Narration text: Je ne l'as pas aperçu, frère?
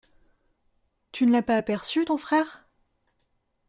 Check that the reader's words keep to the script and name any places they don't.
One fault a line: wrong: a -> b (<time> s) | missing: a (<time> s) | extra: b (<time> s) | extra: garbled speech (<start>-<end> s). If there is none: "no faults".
wrong: Je -> Tu (1.1 s)
extra: ton (2.0 s)